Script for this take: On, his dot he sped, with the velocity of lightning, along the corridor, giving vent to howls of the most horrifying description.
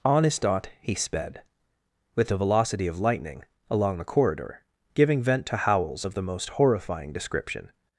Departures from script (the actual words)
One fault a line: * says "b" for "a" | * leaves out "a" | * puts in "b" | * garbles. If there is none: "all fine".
all fine